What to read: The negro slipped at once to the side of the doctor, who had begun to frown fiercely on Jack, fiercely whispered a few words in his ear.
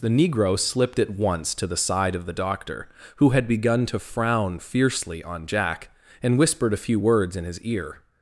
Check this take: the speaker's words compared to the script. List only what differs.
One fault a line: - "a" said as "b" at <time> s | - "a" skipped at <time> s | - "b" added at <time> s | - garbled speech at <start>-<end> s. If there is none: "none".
- "fiercely" said as "and" at 6.2 s